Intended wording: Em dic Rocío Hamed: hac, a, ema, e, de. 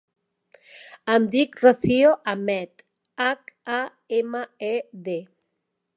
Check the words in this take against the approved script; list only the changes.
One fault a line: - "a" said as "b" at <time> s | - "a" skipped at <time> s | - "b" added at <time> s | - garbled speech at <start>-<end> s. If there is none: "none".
none